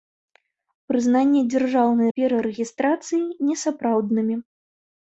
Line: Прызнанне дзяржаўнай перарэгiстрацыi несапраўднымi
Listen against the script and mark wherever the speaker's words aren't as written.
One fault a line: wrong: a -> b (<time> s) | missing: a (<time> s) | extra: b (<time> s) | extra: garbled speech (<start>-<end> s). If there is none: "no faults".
no faults